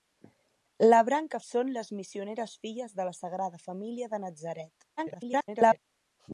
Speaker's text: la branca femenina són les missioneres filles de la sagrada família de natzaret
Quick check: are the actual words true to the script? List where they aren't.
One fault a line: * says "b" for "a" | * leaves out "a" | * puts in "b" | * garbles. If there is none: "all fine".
* leaves out "femenina"
* garbles